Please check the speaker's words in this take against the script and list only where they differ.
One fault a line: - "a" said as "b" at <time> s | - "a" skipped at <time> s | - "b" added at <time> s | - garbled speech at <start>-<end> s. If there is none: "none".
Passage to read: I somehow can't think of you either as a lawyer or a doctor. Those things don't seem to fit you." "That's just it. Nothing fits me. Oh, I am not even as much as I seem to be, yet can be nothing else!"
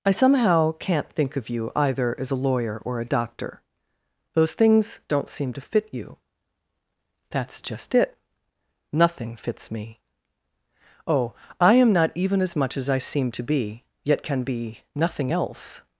none